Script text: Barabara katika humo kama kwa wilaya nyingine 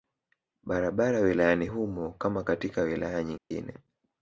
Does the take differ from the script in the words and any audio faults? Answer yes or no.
yes